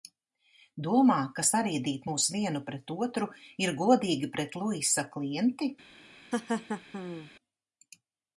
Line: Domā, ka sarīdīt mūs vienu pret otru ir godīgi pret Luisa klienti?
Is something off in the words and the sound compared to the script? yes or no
yes